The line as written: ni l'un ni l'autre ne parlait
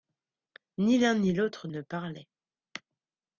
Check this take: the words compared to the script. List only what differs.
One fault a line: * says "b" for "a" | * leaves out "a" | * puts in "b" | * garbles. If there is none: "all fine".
all fine